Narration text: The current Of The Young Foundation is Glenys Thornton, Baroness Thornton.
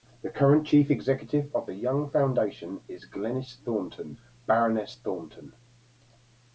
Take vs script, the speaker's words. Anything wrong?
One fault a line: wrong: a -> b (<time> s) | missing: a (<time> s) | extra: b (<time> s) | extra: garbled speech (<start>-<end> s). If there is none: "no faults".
extra: Chief Executive (0.7 s)